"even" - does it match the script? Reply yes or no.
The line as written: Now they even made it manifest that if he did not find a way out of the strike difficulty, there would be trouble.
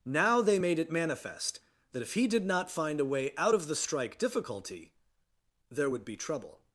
no